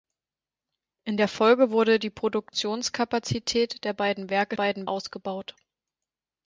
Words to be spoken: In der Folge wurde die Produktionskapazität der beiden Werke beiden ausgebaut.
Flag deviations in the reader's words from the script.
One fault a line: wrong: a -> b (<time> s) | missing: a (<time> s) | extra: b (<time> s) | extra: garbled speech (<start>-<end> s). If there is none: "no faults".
no faults